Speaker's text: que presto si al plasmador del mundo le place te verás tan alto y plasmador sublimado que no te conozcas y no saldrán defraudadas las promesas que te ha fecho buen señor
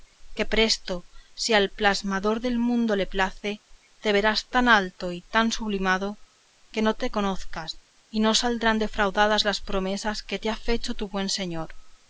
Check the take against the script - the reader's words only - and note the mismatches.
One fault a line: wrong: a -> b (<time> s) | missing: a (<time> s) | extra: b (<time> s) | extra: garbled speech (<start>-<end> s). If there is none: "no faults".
wrong: plasmador -> tan (5.2 s)
extra: tu (10.9 s)